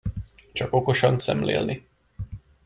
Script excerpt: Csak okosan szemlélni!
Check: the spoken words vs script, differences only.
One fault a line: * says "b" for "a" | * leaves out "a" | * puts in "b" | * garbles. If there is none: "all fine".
all fine